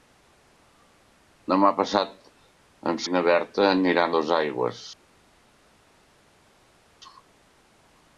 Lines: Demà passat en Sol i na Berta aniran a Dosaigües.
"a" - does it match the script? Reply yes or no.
no